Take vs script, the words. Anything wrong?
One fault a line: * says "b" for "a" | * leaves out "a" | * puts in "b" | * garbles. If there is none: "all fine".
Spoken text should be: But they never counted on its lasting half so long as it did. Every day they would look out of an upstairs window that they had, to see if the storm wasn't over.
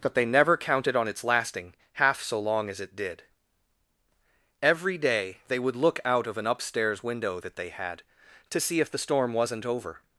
all fine